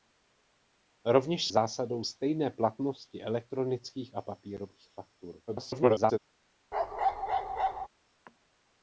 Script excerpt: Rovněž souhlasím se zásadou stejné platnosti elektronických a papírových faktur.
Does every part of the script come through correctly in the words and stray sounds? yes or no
no